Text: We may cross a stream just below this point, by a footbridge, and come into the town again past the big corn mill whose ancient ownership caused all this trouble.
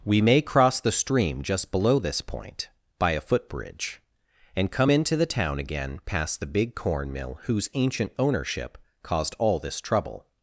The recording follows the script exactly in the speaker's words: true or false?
false